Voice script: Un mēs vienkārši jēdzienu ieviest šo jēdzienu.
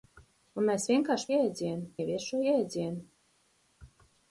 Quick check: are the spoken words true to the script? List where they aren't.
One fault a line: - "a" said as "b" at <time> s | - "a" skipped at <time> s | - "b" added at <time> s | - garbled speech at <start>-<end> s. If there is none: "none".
none